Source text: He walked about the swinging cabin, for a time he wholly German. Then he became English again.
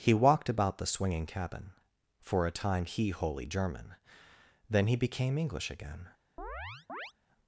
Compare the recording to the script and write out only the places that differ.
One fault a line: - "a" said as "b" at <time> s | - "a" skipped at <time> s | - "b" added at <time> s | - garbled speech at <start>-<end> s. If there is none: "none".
none